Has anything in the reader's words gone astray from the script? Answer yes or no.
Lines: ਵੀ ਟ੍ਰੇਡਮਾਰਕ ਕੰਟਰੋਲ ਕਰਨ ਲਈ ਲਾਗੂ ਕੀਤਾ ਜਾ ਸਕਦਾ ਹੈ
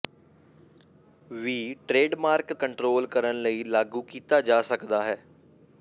no